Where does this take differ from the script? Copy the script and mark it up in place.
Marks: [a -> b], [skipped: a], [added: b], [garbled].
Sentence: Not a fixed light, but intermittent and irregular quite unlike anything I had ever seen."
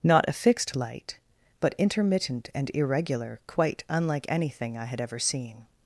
Not a fixed light, but intermittent and irregular quite unlike anything I had ever seen."